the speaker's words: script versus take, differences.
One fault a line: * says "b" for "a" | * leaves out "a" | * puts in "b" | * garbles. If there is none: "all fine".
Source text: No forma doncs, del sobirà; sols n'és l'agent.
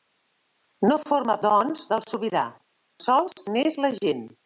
all fine